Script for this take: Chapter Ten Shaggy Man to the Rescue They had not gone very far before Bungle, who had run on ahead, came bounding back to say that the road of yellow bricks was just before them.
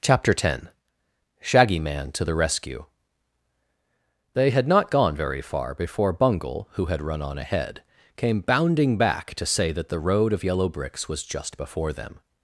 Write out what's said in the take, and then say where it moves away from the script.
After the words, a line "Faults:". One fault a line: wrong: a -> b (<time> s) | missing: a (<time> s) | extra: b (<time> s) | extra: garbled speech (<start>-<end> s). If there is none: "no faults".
Chapter Ten Shaggy Man to the Rescue They had not gone very far before Bungle, who had run on ahead, came bounding back to say that the road of yellow bricks was just before them.
Faults:
no faults